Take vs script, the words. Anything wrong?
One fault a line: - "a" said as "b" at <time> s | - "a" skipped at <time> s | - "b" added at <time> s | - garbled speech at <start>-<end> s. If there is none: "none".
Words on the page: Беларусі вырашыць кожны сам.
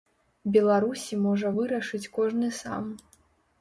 - "можа" added at 1.3 s